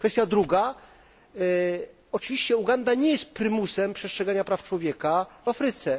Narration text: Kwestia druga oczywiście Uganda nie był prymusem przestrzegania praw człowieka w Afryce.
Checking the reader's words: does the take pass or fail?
fail